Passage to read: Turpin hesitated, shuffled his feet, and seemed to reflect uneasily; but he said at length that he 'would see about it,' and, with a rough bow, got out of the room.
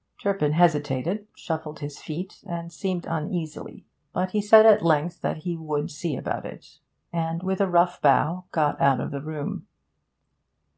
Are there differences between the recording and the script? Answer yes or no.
yes